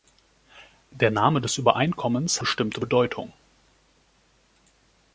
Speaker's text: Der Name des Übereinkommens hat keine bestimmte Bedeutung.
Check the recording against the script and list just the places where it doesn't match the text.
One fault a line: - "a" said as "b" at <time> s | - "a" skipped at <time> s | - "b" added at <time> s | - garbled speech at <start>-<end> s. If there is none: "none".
- "hat keine" skipped at 2.4 s